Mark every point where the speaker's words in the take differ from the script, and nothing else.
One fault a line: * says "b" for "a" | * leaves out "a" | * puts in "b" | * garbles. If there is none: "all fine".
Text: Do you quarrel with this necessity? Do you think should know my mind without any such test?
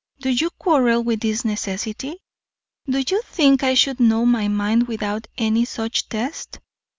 * puts in "I"